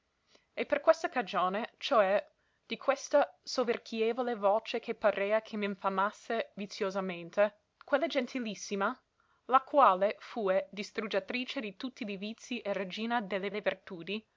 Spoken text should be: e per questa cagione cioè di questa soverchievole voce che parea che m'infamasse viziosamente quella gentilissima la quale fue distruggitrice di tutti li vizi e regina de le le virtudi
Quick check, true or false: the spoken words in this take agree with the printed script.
true